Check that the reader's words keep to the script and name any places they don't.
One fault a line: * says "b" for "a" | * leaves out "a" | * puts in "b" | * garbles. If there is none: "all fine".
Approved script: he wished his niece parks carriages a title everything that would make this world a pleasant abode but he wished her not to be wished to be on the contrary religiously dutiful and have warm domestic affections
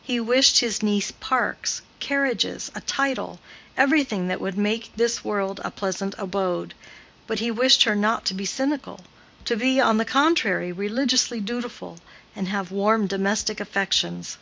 * says "cynical" for "wished"